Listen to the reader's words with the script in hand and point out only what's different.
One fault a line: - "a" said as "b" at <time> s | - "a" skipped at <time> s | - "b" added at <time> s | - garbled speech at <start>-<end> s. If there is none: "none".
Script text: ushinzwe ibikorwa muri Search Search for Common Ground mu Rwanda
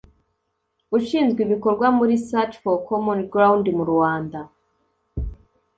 - "Search" skipped at 2.5 s